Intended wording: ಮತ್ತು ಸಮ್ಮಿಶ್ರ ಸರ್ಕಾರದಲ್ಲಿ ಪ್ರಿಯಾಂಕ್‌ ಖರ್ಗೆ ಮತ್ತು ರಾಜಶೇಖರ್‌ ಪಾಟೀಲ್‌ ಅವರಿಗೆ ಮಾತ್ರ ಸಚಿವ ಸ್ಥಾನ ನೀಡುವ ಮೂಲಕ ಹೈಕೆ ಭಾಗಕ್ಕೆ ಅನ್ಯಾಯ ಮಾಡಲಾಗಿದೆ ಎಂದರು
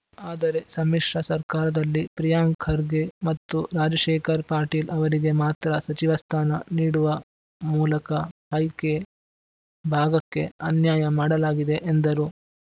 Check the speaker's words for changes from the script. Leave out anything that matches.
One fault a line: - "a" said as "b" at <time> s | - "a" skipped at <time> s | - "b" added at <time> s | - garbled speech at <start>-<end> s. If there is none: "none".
- "ಮತ್ತು" said as "ಆದರೆ" at 0.3 s